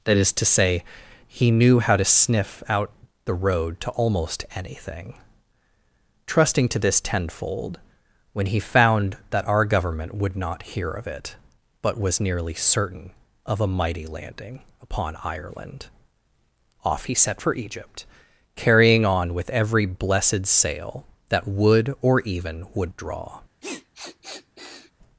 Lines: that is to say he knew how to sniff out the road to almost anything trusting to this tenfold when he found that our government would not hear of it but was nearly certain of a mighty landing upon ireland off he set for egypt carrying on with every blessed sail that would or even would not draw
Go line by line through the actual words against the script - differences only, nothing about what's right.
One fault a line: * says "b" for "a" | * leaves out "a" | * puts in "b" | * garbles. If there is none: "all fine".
* leaves out "not"